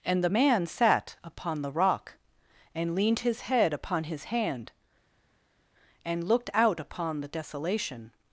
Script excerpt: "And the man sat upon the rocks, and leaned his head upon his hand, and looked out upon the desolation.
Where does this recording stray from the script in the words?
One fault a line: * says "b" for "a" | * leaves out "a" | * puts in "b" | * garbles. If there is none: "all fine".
* says "rock" for "rocks"